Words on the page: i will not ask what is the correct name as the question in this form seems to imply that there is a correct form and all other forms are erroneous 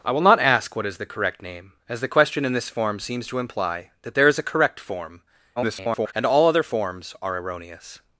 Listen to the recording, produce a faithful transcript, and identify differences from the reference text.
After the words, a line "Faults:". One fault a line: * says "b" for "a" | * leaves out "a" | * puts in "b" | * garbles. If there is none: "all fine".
i will not ask what is the correct name as the question in this form seems to imply that there is a correct form [garbled] and all other forms are erroneous
Faults:
* garbles